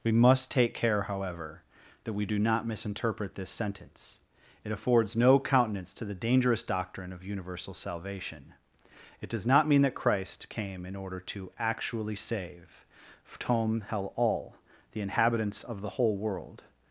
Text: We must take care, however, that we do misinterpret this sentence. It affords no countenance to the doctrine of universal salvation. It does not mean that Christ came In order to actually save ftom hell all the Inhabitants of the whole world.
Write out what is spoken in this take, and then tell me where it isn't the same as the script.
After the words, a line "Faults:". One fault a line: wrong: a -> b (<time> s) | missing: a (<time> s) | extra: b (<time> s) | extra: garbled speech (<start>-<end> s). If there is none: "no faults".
We must take care, however, that we do not misinterpret this sentence. It affords no countenance to the dangerous doctrine of universal salvation. It does not mean that Christ came In order to actually save ftom hell all the Inhabitants of the whole world.
Faults:
extra: not (2.4 s)
extra: dangerous (6.1 s)